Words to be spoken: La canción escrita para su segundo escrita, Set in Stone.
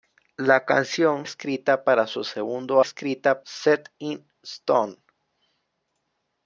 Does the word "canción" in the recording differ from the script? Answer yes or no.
no